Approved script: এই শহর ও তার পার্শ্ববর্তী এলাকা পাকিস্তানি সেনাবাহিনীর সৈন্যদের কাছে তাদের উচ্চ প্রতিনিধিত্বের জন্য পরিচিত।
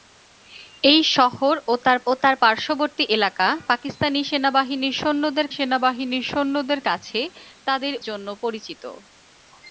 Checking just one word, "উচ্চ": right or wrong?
wrong